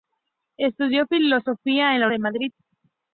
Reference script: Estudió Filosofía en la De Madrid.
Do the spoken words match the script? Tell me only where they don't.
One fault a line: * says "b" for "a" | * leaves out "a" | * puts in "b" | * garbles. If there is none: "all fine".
all fine